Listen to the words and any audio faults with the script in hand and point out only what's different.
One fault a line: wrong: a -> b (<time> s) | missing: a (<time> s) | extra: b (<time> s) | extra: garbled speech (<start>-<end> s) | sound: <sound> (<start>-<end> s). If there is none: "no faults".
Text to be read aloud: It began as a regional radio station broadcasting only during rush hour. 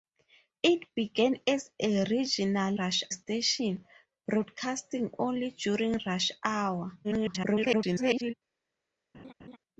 wrong: radio -> rush (2.8 s)
extra: garbled speech (7.0-8.3 s)
sound: laugh (9.1-9.6 s)